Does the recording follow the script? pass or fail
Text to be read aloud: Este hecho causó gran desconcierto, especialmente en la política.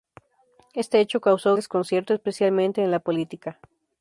fail